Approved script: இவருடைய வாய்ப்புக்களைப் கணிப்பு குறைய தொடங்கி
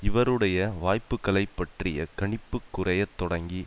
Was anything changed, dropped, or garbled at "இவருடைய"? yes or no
no